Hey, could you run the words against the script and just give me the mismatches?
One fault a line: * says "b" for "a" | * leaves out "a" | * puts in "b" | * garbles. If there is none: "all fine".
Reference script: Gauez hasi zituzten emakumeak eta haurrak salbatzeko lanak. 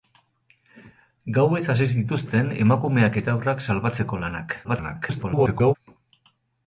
* garbles